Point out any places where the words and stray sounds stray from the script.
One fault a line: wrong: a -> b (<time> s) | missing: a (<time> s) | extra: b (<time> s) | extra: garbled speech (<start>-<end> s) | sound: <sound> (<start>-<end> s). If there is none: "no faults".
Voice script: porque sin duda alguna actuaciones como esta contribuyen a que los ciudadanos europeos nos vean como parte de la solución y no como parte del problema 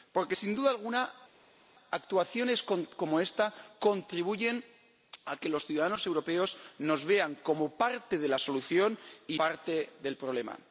missing: no como (9.4 s)